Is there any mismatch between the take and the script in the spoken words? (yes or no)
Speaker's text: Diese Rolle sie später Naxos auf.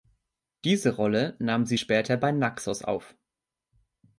yes